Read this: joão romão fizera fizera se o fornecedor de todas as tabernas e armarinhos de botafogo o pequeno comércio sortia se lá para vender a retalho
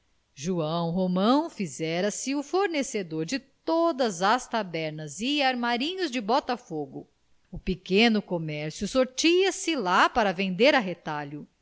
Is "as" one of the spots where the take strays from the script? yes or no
no